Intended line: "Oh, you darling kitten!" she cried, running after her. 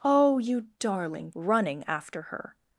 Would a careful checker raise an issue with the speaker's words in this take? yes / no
yes